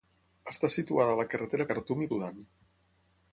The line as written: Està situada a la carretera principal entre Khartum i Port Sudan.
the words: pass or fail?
fail